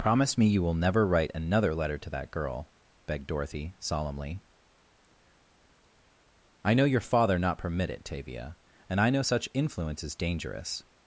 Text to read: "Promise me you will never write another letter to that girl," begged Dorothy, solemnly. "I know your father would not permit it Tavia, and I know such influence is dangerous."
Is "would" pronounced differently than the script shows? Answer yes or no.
yes